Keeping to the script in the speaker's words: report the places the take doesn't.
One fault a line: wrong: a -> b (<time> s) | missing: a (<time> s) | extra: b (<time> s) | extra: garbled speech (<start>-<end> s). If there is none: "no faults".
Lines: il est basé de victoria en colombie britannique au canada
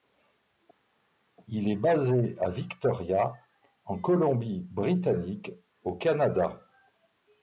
wrong: de -> à (2.4 s)